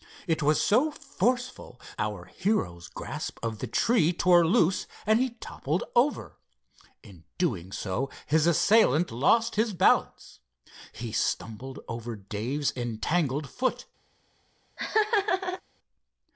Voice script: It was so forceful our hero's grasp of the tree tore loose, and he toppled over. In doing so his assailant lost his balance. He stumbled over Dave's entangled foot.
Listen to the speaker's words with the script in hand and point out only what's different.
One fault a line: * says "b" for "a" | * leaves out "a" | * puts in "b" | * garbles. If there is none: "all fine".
all fine